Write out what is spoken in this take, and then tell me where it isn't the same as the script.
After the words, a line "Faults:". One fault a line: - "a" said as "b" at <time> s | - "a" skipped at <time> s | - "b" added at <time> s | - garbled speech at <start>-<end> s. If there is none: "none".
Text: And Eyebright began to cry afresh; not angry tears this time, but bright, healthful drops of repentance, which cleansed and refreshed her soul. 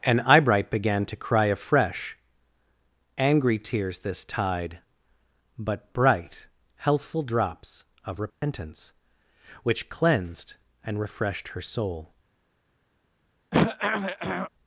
And Eyebright began to cry afresh; angry tears this tide, but bright, healthful drops of repentance, which cleansed and refreshed her soul.
Faults:
- "not" skipped at 2.2 s
- "time" said as "tide" at 4.2 s